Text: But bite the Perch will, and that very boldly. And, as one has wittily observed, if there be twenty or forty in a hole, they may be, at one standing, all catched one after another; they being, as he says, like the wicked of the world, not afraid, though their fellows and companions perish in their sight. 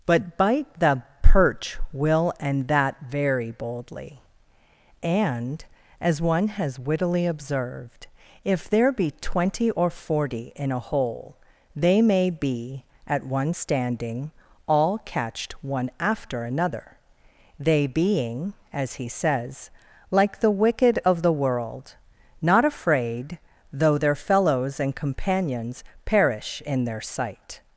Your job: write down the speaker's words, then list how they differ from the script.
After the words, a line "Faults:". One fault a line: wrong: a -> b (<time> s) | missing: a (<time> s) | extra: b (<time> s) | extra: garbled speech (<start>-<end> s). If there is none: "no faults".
But bite the Perch will, and that very boldly. And, as one has wittily observed, if there be twenty or forty in a hole, they may be, at one standing, all catched one after another; they being, as he says, like the wicked of the world, not afraid, though their fellows and companions perish in their sight.
Faults:
no faults